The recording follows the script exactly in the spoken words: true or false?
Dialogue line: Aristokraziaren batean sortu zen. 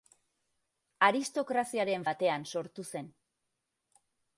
true